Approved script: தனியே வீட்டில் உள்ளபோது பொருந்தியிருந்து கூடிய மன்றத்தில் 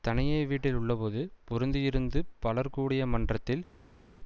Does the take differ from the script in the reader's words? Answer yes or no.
yes